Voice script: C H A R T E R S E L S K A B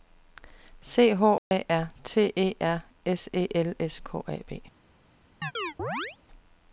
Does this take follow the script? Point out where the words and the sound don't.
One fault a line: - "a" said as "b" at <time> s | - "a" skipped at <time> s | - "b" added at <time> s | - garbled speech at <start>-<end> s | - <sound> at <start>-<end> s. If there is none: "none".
- dropout at 1.4-1.5 s
- chirp at 5.4-6.2 s